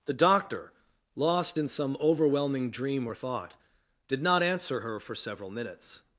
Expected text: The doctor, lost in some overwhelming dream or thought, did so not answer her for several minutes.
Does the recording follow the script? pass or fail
fail